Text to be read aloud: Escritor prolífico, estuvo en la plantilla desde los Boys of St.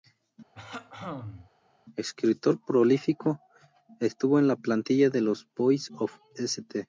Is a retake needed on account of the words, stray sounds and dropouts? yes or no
yes